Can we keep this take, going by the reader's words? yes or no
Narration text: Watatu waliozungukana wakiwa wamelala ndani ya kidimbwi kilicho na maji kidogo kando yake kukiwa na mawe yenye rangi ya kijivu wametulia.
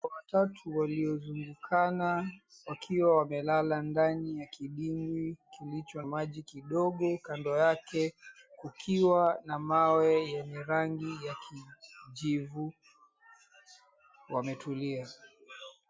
no